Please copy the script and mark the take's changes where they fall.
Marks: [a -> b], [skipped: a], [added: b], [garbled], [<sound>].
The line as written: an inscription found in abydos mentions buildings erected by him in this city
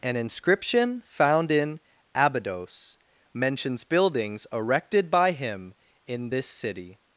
an inscription found in abydos mentions buildings erected by him in this city